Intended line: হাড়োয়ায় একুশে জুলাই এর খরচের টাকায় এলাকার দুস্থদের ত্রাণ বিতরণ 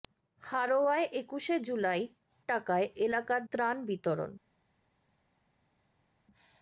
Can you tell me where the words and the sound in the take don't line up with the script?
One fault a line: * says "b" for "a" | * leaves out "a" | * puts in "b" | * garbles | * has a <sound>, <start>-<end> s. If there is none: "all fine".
* leaves out "এর খরচের"
* leaves out "দুস্থদের"